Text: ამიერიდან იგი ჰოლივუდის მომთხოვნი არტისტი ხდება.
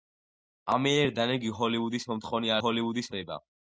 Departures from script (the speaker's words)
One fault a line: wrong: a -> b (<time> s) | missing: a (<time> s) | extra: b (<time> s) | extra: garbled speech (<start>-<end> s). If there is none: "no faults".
wrong: არტისტი -> ჰოლივუდის (2.6 s)